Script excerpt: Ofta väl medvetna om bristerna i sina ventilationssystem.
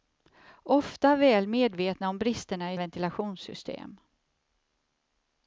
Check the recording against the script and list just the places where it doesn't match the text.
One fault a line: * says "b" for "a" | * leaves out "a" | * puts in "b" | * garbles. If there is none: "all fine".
* leaves out "sina"